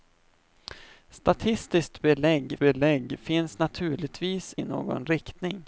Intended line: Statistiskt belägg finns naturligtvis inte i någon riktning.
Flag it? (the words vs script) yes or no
yes